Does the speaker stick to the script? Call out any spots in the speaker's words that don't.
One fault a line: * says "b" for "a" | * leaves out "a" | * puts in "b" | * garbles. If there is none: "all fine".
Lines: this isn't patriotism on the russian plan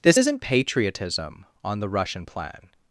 all fine